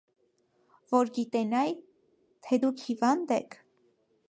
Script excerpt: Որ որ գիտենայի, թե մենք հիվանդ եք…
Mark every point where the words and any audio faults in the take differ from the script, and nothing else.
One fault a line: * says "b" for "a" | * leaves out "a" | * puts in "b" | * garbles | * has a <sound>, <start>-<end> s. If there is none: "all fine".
* leaves out "որ"
* says "դուք" for "մենք"